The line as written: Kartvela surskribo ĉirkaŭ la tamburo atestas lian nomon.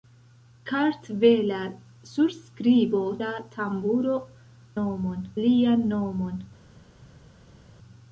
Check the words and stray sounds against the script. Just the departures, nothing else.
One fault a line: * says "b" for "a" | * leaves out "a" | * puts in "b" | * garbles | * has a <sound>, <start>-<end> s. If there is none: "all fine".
* leaves out "ĉirkaŭ"
* says "nomon" for "atestas"